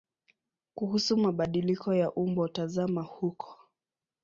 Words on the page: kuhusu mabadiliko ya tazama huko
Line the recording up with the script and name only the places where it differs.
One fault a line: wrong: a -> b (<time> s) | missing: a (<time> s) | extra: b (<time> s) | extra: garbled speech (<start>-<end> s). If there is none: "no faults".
extra: umbo (2.1 s)